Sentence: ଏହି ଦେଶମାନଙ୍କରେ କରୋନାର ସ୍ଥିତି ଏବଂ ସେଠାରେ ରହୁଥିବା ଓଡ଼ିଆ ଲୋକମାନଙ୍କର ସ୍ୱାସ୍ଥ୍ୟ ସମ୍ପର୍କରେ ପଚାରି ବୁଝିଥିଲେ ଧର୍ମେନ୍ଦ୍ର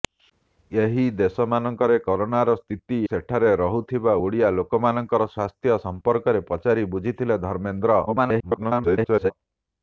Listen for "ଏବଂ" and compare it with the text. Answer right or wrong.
wrong